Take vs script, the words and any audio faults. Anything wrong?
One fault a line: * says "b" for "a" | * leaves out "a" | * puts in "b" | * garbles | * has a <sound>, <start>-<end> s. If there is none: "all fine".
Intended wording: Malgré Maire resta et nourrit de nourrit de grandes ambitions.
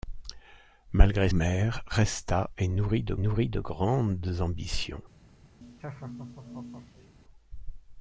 * has a laugh, 5.6-7.1 s